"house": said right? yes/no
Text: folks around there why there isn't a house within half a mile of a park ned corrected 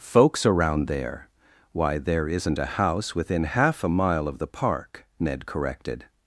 yes